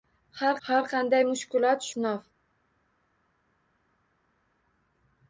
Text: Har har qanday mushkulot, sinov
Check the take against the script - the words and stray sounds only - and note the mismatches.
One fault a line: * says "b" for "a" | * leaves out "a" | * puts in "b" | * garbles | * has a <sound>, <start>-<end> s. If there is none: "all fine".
all fine